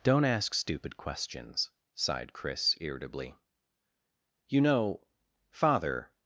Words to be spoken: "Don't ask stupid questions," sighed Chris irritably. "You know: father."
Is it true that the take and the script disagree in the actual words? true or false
false